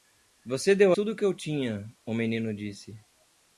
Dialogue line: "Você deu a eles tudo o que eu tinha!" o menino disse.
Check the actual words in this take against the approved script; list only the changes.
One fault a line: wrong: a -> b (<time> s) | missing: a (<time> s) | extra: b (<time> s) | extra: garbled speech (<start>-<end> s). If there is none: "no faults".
missing: a eles (0.9 s)